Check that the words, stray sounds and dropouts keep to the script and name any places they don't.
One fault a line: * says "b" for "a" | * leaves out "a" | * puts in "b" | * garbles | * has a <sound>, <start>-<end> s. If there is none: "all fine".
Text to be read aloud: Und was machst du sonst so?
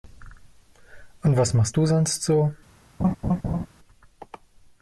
* has a laugh, 3.0-3.7 s